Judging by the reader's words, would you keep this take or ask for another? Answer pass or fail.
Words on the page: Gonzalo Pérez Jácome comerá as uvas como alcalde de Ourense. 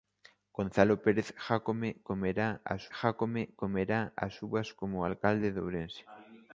fail